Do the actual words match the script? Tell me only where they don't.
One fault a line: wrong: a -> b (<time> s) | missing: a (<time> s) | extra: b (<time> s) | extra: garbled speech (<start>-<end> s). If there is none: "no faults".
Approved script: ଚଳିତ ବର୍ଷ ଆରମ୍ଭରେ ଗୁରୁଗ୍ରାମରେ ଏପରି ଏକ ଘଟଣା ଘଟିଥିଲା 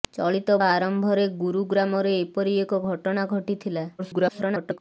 missing: ବର୍ଷ (0.5 s)
extra: garbled speech (4.0-4.8 s)